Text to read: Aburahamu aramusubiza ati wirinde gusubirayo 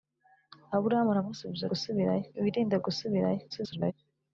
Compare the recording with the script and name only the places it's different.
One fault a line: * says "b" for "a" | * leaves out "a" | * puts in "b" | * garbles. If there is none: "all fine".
* says "gusubirayo" for "ati"
* garbles